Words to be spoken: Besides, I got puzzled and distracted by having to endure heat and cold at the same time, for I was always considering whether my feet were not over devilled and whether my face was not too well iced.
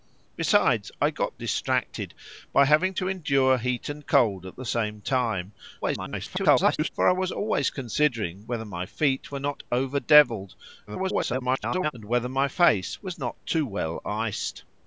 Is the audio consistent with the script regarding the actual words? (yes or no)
no